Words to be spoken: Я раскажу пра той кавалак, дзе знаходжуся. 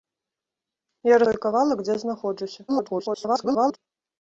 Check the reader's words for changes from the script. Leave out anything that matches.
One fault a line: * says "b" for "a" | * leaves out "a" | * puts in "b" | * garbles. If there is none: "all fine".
* leaves out "раскажу пра"
* garbles